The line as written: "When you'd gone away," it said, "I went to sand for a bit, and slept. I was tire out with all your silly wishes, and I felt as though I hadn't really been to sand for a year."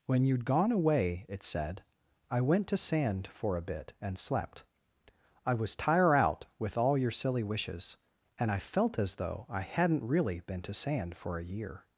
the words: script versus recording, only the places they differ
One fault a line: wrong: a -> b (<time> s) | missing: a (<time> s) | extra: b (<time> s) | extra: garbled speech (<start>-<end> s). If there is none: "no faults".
no faults